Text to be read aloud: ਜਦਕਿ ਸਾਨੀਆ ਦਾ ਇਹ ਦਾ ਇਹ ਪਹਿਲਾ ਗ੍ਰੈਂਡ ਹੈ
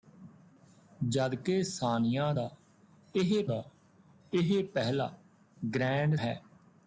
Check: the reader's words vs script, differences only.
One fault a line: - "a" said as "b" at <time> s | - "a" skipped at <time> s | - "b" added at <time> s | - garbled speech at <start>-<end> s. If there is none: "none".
none